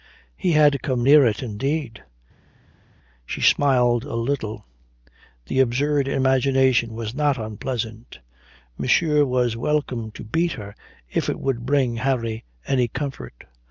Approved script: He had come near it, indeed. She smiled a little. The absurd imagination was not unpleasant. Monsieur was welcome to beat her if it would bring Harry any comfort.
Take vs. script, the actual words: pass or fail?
pass